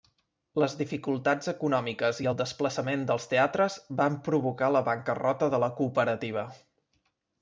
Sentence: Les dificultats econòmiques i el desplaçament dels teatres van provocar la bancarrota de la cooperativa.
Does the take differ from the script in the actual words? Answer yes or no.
no